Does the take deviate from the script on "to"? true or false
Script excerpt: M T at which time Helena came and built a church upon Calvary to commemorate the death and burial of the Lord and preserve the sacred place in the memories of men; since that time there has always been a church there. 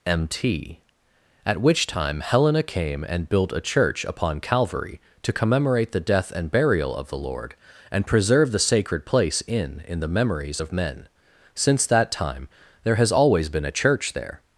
false